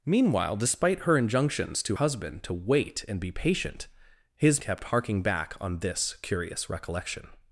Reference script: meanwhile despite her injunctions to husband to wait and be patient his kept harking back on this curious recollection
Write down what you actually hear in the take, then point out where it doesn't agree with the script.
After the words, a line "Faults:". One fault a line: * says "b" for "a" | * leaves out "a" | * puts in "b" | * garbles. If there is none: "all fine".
meanwhile despite her injunctions to husband to wait and be patient his kept harking back on this curious recollection
Faults:
all fine